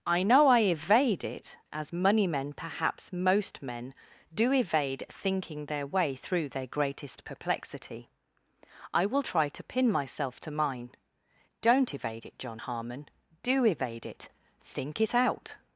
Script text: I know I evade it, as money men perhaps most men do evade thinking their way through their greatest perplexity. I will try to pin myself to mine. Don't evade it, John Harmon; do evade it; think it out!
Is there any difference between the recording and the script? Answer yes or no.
no